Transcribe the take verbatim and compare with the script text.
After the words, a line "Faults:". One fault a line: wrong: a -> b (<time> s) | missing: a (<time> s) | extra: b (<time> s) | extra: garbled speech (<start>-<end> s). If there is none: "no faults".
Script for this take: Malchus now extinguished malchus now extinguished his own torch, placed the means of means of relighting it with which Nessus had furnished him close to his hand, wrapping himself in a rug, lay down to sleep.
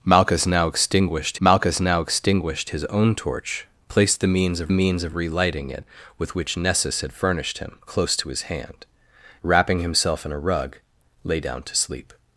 Malchus now extinguished malchus now extinguished his own torch, placed the means of means of relighting it with which Nessus had furnished him close to his hand, wrapping himself in a rug, lay down to sleep.
Faults:
no faults